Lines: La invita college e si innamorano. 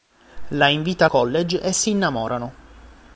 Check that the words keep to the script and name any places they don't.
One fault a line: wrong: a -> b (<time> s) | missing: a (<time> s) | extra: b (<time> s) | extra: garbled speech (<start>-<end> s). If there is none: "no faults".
no faults